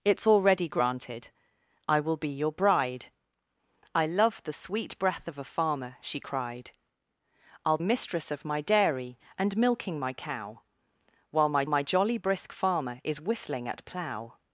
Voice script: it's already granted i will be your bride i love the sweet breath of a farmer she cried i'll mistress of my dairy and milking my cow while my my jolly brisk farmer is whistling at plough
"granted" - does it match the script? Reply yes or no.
yes